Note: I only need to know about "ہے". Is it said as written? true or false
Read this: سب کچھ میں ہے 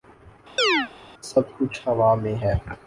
true